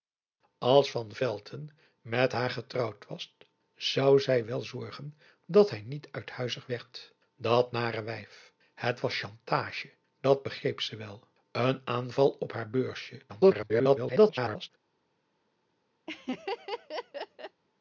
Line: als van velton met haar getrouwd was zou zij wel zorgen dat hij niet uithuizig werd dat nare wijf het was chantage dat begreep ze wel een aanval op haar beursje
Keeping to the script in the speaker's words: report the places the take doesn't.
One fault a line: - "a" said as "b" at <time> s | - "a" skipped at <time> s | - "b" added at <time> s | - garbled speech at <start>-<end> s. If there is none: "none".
- garbled speech at 13.3-14.7 s